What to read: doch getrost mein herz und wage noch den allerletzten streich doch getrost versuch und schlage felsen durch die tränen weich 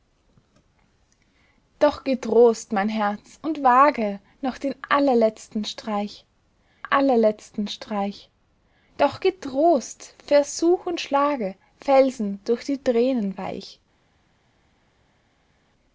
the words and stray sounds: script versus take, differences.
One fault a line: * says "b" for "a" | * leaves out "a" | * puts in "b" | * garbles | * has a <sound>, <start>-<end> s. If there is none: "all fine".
* puts in "allerletzten streich"